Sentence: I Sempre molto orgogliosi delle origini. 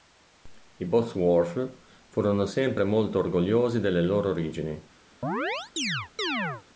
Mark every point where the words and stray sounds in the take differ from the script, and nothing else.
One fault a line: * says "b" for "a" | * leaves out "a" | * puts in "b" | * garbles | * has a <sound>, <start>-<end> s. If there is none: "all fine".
* puts in "Bosworth furono"
* puts in "loro"
* has a chirp, 5.2-6.6 s